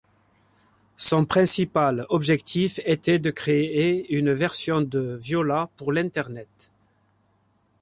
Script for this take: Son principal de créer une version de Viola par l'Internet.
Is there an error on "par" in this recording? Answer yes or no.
yes